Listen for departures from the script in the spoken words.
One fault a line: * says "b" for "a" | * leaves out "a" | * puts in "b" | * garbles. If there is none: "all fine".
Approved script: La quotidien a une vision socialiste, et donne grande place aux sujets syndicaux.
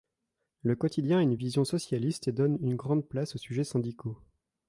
* says "Le" for "La"
* puts in "une"